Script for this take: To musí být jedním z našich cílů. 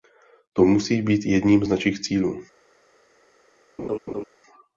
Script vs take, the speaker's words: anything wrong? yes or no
no